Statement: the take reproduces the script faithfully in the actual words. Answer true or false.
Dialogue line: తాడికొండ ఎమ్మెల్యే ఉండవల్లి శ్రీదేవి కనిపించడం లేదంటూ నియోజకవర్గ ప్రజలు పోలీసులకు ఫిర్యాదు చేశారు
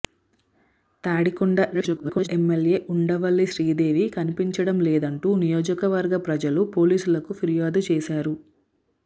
false